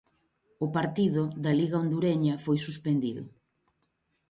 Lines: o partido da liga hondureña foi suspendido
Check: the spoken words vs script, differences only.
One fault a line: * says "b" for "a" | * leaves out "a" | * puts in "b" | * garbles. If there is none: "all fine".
all fine